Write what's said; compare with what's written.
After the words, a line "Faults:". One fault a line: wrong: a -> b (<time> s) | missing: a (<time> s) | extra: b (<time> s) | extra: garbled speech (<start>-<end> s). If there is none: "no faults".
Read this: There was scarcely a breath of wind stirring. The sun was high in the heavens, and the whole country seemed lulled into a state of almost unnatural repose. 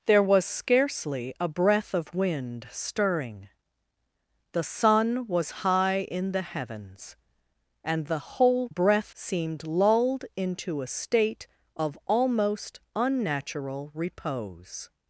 There was scarcely a breath of wind stirring. The sun was high in the heavens, and the whole breath seemed lulled into a state of almost unnatural repose.
Faults:
wrong: country -> breath (8.7 s)